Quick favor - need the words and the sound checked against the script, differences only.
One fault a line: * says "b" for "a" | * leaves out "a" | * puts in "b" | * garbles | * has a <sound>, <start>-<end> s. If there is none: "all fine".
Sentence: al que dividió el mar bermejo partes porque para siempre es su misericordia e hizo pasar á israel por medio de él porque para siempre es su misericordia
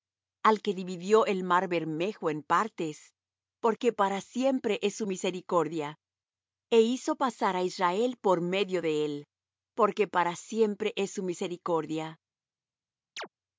* puts in "en"
* has a chirp, 13.2-13.3 s